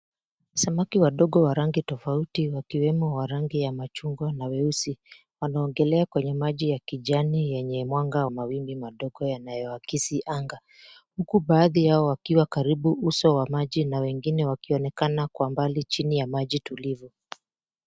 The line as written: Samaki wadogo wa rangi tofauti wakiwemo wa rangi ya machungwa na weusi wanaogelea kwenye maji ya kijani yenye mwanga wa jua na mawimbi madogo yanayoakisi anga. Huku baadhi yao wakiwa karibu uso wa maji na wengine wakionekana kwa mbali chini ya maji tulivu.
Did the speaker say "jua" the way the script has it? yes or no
no